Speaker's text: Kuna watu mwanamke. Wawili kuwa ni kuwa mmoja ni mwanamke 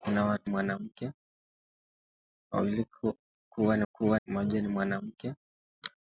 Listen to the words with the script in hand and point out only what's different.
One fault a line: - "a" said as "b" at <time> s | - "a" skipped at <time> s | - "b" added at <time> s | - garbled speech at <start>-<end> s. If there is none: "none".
none